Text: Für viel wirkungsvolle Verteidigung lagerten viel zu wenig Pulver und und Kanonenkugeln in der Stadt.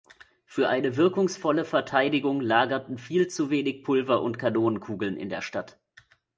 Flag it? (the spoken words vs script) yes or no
yes